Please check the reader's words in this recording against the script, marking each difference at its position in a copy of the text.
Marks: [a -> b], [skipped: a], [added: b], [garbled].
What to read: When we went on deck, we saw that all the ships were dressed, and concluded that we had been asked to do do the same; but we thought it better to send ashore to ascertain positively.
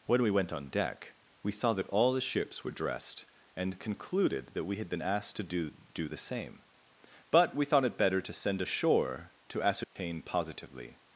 When we went on deck, we saw that all the ships were dressed, and concluded that we had been asked to do do the same; but we thought it better to send ashore to ascertain positively.